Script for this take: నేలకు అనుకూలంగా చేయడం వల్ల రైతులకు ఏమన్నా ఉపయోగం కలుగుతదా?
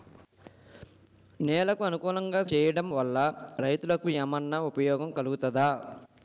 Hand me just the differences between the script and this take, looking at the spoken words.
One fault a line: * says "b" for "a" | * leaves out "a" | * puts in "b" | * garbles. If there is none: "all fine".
all fine